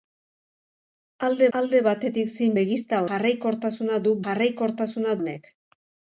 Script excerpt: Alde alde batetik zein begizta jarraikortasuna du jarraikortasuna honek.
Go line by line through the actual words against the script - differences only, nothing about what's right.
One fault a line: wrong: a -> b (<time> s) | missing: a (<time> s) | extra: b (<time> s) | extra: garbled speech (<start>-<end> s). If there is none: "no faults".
no faults